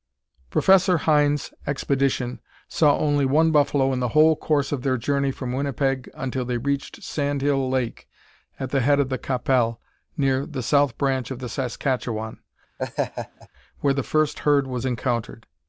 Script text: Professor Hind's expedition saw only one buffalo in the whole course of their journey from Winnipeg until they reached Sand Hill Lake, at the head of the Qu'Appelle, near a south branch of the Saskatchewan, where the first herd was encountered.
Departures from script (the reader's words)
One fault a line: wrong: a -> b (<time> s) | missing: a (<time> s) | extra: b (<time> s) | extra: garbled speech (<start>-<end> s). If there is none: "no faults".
wrong: a -> the (10.5 s)